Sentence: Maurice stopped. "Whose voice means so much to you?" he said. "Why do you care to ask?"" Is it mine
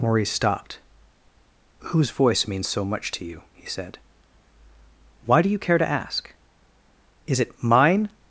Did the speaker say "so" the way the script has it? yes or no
yes